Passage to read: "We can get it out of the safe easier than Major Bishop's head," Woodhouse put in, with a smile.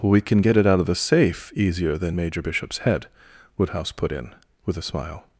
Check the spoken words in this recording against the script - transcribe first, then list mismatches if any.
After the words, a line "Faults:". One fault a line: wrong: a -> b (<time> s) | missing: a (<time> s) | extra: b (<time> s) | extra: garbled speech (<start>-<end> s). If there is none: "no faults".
"We can get it out of the safe easier than Major Bishop's head," Woodhouse put in, with a smile.
Faults:
no faults